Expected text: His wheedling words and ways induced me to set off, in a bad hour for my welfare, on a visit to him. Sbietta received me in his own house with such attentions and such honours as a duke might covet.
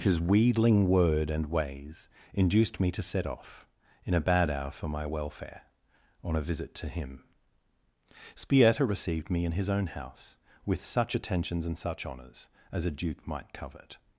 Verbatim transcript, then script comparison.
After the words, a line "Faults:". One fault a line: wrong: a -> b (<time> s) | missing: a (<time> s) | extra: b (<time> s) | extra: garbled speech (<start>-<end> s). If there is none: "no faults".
His wheedling word and ways induced me to set off, in a bad hour for my welfare, on a visit to him. Sbietta received me in his own house with such attentions and such honours as a duke might covet.
Faults:
wrong: words -> word (0.9 s)